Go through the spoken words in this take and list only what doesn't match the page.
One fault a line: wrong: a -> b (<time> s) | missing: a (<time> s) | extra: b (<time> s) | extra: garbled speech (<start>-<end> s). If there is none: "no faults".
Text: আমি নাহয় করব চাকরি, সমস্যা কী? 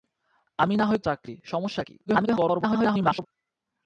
missing: করব (1.0 s)
extra: garbled speech (2.1-3.3 s)